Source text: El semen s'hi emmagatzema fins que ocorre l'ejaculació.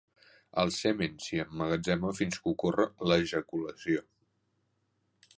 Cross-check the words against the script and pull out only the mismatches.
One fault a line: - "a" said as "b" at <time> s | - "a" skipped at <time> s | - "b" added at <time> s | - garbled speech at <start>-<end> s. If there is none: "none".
none